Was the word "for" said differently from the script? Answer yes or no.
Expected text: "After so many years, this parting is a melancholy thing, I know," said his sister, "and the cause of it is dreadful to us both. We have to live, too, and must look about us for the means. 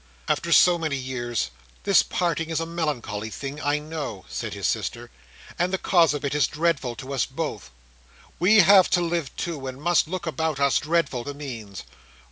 yes